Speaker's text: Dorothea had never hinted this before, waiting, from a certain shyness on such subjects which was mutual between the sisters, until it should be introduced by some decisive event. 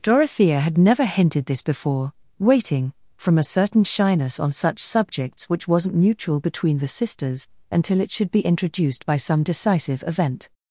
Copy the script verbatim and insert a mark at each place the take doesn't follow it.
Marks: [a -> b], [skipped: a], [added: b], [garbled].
Dorothea had never hinted this before, waiting, from a certain shyness on such subjects which [was -> wasn't] mutual between the sisters, until it should be introduced by some decisive event.